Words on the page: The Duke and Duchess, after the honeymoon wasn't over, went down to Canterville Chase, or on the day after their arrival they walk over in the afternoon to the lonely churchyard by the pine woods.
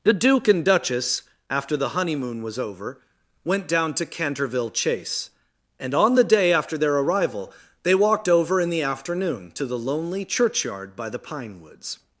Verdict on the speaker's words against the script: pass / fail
fail